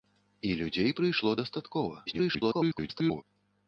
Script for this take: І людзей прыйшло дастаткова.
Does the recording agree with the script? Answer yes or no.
no